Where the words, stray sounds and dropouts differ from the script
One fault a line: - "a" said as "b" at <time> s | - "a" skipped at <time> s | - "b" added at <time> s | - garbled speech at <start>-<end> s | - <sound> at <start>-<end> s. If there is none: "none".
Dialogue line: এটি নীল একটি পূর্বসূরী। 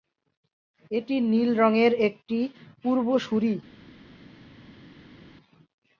- "রঙের" added at 1.6 s